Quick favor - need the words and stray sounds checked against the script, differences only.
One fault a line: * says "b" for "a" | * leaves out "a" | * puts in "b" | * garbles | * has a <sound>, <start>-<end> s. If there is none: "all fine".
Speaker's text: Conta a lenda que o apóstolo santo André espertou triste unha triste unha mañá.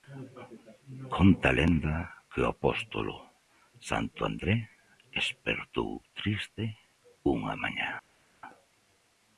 * leaves out "triste unha"